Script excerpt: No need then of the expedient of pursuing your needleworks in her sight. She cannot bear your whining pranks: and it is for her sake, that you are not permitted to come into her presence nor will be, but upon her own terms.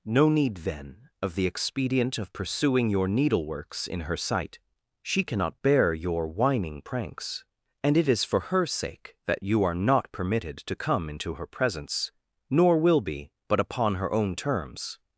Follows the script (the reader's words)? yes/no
yes